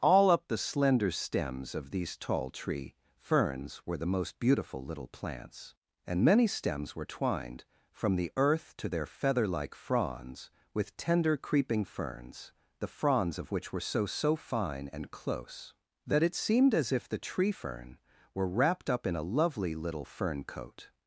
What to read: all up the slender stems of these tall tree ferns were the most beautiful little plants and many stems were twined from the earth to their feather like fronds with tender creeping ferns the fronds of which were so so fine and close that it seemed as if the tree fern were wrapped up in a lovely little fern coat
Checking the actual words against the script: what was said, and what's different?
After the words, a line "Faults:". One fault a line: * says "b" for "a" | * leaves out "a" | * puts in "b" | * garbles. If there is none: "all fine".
all up the slender stems of these tall tree ferns were the most beautiful little plants and many stems were twined from the earth to their feather like fronds with tender creeping ferns the fronds of which were so so fine and close that it seemed as if the tree fern were wrapped up in a lovely little fern coat
Faults:
all fine